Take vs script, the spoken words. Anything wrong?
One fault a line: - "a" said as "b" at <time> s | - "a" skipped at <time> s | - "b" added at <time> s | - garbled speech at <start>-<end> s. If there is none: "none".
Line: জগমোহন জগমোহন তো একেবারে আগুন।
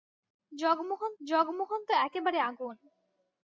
none